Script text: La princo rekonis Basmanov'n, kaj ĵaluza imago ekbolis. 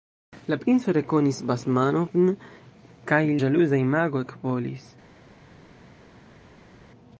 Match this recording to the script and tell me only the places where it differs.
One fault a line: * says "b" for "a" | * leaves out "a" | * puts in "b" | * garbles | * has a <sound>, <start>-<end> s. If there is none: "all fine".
all fine